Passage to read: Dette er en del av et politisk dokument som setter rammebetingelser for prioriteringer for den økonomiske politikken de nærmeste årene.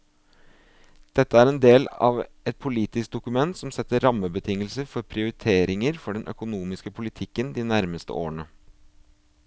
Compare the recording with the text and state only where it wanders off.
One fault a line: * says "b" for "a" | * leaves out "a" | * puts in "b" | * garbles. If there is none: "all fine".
all fine